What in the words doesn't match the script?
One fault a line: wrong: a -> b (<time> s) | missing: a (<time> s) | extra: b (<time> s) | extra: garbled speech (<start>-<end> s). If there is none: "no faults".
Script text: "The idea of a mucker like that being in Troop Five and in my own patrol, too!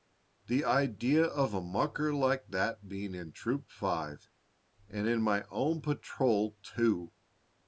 no faults